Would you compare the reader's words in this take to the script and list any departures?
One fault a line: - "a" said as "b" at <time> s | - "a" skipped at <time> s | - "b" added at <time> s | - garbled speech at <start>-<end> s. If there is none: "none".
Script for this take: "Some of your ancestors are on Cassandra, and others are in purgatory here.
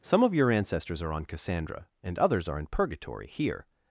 none